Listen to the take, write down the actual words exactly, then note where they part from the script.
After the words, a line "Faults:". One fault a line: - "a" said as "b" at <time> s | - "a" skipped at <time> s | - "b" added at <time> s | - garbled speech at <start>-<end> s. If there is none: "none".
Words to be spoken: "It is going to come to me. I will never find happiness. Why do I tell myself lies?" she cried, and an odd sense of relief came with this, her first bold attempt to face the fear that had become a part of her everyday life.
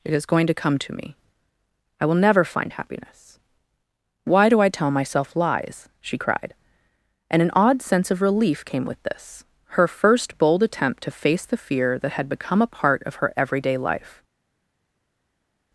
"It is going to come to me. I will never find happiness. Why do I tell myself lies?" she cried, and an odd sense of relief came with this, her first bold attempt to face the fear that had become a part of her everyday life.
Faults:
none